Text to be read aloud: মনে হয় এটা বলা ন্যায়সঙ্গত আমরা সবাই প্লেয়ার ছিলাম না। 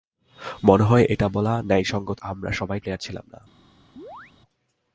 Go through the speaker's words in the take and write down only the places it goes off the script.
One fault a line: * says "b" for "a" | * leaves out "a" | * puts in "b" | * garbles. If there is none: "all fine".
all fine